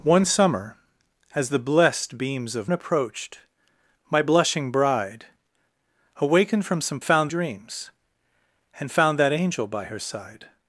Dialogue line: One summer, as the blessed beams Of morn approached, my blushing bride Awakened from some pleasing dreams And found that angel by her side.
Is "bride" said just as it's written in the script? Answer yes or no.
yes